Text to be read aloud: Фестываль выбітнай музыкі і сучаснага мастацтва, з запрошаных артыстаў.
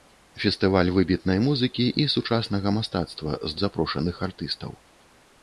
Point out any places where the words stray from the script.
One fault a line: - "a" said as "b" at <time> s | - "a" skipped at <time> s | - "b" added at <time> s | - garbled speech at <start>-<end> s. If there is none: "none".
none